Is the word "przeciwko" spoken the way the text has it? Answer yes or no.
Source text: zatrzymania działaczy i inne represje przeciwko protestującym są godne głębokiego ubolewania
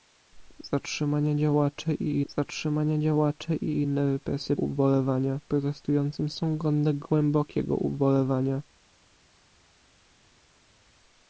no